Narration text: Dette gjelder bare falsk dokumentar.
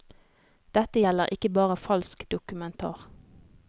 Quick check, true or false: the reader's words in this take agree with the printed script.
false